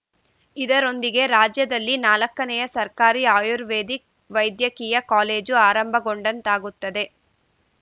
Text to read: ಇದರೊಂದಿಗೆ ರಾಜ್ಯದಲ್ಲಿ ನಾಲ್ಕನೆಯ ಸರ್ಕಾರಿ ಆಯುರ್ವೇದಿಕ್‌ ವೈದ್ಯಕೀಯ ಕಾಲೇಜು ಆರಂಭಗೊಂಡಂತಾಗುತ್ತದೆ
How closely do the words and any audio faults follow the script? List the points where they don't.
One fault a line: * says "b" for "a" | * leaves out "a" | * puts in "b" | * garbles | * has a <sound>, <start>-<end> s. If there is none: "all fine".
all fine